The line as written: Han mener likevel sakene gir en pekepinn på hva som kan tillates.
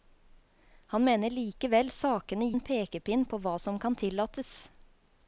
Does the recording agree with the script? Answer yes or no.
no